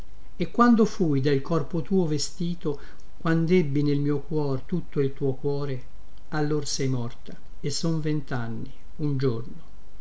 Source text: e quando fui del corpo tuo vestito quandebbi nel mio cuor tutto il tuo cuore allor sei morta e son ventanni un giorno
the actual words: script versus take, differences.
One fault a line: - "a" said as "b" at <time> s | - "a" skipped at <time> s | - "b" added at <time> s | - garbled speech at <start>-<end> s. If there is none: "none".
none